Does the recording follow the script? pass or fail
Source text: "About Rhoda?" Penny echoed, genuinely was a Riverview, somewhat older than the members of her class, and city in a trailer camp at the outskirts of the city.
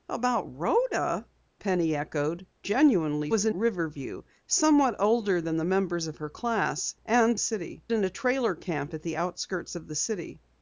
pass